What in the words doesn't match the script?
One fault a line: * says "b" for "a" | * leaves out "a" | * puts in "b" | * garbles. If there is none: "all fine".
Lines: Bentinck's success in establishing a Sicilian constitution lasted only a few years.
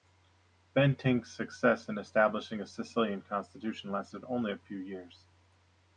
all fine